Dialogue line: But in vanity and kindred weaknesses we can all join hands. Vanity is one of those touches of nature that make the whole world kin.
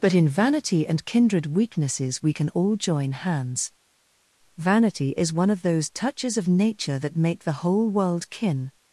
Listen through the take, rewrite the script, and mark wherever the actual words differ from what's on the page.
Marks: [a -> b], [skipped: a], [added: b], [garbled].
But in vanity and kindred weaknesses we can all join hands. Vanity is one of those touches of nature that make the whole world kin.